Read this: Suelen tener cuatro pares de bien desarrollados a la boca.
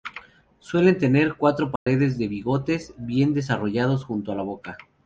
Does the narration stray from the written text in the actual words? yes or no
yes